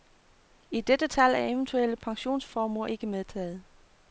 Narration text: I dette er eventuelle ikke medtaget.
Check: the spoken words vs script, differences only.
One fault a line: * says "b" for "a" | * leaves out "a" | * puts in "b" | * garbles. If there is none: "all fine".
* puts in "tal"
* puts in "pensionsformuer"